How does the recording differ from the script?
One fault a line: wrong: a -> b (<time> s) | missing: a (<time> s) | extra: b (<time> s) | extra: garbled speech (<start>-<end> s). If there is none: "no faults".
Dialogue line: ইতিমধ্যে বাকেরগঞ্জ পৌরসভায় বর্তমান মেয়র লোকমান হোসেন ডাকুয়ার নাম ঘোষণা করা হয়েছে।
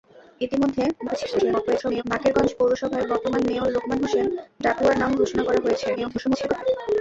extra: garbled speech (1.0-2.0 s)
extra: garbled speech (6.0-6.6 s)